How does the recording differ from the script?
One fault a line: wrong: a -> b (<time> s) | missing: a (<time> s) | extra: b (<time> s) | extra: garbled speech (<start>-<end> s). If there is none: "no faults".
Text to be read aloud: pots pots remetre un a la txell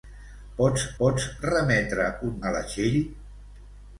no faults